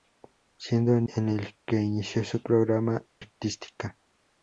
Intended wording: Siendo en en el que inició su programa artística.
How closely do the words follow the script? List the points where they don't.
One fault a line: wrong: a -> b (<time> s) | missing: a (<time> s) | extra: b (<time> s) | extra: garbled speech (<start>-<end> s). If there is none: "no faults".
no faults